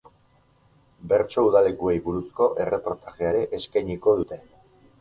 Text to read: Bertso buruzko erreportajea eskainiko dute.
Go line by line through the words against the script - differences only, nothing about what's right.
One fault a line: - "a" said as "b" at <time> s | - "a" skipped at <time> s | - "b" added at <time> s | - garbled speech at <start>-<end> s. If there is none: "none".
- "udalekuei" added at 1.5 s
- "ere" added at 3.3 s